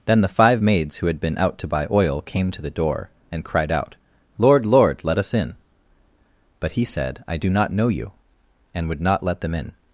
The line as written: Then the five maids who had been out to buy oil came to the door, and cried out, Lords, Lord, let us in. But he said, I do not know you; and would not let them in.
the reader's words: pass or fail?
fail